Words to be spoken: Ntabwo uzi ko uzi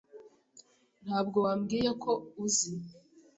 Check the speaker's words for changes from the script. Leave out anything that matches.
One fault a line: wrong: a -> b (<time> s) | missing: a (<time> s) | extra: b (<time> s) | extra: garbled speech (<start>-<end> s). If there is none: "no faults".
wrong: uzi -> wambwiye (1.4 s)